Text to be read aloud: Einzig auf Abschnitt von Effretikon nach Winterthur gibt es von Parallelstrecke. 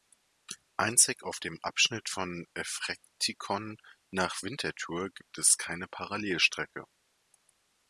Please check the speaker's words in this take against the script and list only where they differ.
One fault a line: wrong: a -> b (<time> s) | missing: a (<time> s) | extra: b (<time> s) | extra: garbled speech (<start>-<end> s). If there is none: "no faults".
extra: dem (1.4 s)
wrong: von -> keine (5.6 s)